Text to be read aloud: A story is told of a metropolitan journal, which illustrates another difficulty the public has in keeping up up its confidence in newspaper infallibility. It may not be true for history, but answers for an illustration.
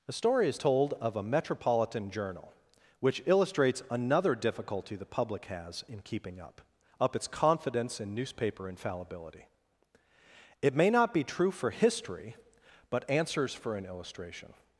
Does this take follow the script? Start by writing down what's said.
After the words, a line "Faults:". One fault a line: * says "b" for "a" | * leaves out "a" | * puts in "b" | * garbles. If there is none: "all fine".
A story is told of a metropolitan journal, which illustrates another difficulty the public has in keeping up up its confidence in newspaper infallibility. It may not be true for history, but answers for an illustration.
Faults:
all fine